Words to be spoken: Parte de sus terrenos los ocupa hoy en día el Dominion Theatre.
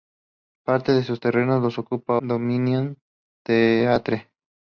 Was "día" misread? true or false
true